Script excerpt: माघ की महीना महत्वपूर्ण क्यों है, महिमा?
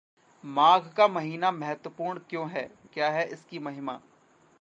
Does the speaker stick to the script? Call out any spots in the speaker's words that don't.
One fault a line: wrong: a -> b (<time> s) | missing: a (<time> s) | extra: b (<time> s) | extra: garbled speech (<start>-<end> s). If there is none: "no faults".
wrong: की -> का (0.9 s)
extra: क्या है इसकी (2.9 s)